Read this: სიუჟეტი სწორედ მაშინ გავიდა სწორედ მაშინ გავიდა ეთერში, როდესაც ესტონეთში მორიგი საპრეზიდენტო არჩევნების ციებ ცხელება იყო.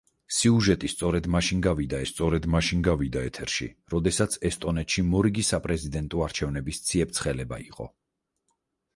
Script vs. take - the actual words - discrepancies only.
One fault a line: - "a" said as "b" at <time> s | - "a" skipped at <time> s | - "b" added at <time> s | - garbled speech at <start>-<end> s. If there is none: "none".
none